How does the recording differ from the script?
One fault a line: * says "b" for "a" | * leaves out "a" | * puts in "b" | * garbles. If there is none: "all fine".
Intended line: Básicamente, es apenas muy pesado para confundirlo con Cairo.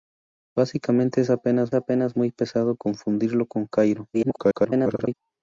* puts in "apenas"
* leaves out "para"
* garbles